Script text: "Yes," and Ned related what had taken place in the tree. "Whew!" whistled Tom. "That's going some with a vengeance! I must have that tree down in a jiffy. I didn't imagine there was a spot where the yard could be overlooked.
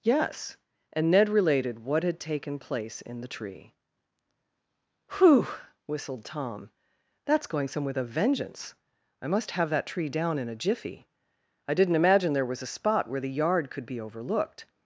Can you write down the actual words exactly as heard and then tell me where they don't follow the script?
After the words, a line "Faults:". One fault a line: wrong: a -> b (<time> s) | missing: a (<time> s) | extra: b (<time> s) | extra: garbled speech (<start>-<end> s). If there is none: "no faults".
"Yes," and Ned related what had taken place in the tree. "Whew!" whistled Tom. "That's going some with a vengeance! I must have that tree down in a jiffy. I didn't imagine there was a spot where the yard could be overlooked.
Faults:
no faults